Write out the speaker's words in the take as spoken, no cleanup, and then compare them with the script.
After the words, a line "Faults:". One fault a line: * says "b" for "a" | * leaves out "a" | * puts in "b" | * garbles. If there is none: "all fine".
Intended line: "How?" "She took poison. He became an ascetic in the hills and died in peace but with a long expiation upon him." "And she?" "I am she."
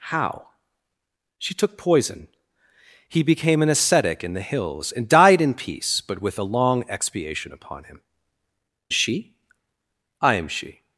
"How?" "She took poison. He became an ascetic in the hills and died in peace but with a long expiation upon him." "She?" "I am she."
Faults:
* leaves out "And"